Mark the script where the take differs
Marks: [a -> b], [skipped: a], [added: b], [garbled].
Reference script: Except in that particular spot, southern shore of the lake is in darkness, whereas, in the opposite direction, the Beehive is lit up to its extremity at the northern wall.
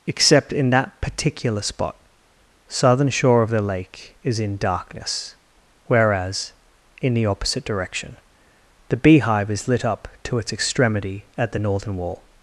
Except in that particular spot, southern shore of the lake is in darkness, whereas, in the opposite direction, the Beehive is lit up to its extremity at the northern wall.